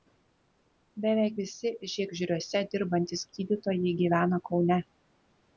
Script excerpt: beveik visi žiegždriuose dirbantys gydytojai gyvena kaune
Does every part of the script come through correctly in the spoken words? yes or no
yes